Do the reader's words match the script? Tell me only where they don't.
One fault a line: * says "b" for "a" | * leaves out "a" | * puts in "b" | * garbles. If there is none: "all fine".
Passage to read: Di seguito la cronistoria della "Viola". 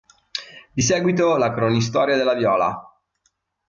all fine